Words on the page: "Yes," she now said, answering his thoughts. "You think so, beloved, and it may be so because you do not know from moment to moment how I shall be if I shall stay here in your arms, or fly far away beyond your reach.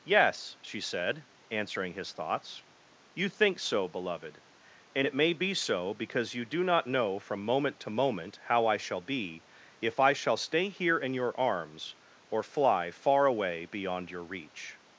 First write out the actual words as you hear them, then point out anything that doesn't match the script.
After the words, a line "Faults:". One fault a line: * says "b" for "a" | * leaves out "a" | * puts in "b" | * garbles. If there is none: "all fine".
"Yes," she said, answering his thoughts. "You think so, beloved, and it may be so because you do not know from moment to moment how I shall be if I shall stay here in your arms, or fly far away beyond your reach.
Faults:
* leaves out "now"